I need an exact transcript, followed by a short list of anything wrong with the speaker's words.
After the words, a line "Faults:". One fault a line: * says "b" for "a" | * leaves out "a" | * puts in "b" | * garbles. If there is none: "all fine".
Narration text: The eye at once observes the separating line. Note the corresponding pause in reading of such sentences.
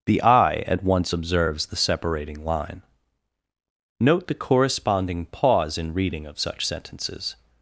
The eye at once observes the separating line. Note the corresponding pause in reading of such sentences.
Faults:
all fine